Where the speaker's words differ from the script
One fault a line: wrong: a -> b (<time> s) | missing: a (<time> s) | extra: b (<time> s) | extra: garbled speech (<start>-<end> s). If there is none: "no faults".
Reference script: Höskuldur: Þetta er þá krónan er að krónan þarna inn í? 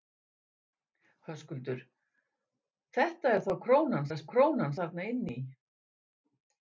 no faults